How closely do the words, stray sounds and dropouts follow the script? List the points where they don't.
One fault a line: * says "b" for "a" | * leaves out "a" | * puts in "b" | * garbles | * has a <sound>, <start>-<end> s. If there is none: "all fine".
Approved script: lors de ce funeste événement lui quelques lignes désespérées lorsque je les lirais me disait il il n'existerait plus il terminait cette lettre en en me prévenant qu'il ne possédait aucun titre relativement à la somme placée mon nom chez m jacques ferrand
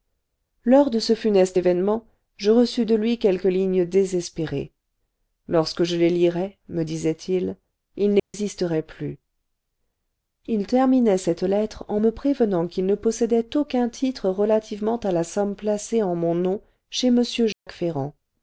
* puts in "je reçus de"
* has a dropout, 8.2-8.3 s
* leaves out "en"
* puts in "en"
* has a dropout, 17.5-17.7 s